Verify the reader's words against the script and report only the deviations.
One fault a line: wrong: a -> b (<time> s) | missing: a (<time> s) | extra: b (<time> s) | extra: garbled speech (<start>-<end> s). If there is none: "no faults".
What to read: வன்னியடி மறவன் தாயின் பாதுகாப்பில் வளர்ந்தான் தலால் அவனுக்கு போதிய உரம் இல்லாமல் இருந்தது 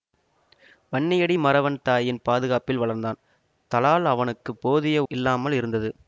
missing: உரம் (5.0 s)